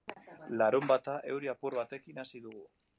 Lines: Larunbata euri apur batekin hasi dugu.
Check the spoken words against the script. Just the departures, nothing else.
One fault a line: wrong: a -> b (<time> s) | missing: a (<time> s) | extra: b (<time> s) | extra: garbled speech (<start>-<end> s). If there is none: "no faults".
no faults